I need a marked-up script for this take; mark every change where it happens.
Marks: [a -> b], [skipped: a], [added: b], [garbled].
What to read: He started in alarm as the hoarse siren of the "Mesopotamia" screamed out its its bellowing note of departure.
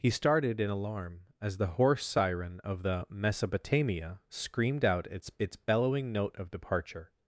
He started in alarm as the hoarse siren of the "Mesopotamia" screamed out its its bellowing note of departure.